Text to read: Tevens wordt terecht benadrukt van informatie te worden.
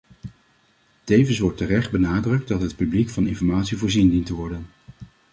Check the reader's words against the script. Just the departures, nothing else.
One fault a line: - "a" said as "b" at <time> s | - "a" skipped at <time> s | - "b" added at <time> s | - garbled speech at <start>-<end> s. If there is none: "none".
- "dat het publiek" added at 2.5 s
- "voorzien dient" added at 3.8 s